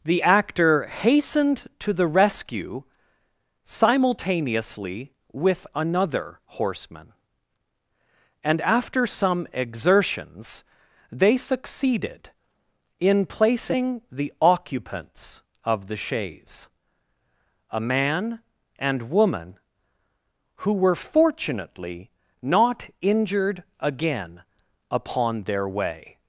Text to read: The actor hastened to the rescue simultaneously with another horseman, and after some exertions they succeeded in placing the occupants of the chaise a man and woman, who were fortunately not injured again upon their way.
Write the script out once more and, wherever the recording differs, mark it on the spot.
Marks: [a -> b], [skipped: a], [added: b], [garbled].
The actor hastened to the rescue simultaneously with another horseman, and after some exertions they succeeded in placing the occupants of the chaise a man and woman, who were fortunately not injured again upon their way.